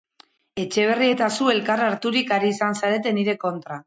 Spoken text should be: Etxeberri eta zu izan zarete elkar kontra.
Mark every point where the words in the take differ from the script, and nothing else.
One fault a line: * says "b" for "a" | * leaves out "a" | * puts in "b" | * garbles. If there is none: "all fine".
* puts in "elkar harturik ari"
* says "nire" for "elkar"